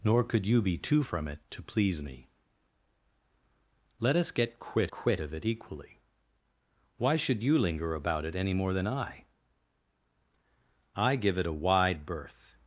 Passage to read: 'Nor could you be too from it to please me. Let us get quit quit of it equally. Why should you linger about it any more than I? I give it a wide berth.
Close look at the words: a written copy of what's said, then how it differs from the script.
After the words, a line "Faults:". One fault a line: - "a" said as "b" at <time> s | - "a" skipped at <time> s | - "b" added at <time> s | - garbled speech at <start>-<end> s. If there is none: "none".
'Nor could you be too from it to please me. Let us get quit quit of it equally. Why should you linger about it any more than I? I give it a wide berth.
Faults:
none